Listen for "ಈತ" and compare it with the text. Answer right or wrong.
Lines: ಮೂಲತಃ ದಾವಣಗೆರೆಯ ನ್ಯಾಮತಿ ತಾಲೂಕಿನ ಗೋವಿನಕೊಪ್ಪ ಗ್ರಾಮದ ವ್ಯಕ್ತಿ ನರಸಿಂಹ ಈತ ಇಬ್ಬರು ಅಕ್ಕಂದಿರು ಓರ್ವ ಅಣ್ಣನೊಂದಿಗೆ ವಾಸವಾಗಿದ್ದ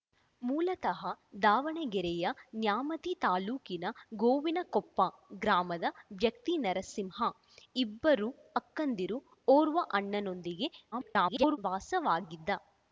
wrong